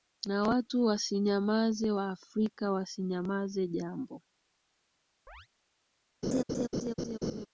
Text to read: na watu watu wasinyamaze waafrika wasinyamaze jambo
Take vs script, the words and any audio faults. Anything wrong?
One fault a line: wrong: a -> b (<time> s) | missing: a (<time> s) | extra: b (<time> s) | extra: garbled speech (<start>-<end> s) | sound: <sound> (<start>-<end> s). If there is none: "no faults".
missing: watu (0.8 s)
sound: chirp (5.3-5.5 s)
sound: laugh (6.2-7.5 s)